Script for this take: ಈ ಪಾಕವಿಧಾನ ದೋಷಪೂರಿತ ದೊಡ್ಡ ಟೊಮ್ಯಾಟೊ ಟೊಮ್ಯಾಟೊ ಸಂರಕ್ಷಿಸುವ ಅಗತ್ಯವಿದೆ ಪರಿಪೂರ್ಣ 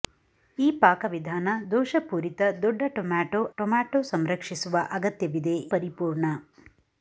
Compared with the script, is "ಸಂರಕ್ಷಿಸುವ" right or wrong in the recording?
right